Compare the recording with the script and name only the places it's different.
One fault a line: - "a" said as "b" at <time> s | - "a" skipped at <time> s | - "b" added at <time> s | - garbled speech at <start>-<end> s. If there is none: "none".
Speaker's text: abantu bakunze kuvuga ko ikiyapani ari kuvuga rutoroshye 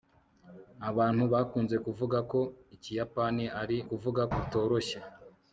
none